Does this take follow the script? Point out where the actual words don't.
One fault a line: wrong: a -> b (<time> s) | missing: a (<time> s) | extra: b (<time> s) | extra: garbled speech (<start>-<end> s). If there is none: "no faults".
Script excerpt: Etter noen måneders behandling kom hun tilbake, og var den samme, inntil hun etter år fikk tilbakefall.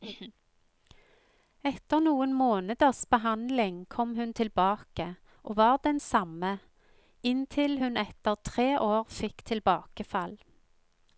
extra: tre (8.4 s)